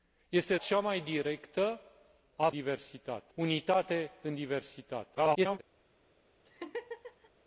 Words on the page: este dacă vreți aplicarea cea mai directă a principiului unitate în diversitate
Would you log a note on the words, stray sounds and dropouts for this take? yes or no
yes